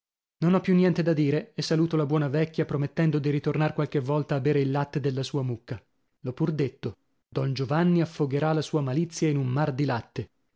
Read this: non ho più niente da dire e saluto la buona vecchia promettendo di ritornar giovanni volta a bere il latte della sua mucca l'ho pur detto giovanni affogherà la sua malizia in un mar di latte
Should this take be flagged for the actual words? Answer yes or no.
yes